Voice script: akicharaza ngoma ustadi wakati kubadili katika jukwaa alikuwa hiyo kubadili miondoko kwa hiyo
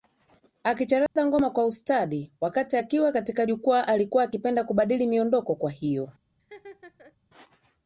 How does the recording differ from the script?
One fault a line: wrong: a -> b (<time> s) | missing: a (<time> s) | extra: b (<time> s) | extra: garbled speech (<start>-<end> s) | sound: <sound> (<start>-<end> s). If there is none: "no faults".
sound: dropout (1.1-1.2 s)
extra: kwa (1.5 s)
wrong: kubadili -> akiwa (2.8 s)
wrong: hiyo -> akipenda (4.2 s)
sound: laugh (6.4-7.2 s)